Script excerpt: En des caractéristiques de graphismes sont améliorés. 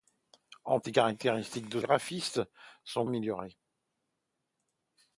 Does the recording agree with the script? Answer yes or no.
yes